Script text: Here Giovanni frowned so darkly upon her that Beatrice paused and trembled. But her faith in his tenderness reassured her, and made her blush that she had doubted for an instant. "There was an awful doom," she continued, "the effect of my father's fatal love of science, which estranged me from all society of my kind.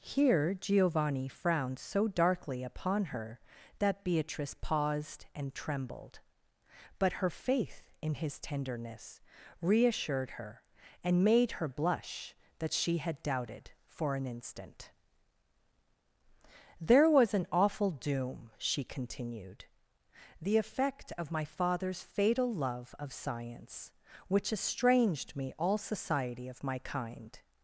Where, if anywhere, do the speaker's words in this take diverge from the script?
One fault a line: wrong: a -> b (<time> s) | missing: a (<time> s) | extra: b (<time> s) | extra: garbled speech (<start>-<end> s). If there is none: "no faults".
missing: from (25.5 s)